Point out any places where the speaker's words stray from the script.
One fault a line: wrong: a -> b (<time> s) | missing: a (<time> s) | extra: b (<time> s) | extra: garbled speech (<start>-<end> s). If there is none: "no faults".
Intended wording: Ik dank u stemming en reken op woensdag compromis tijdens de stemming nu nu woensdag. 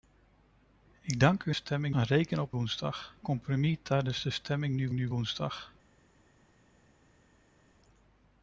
no faults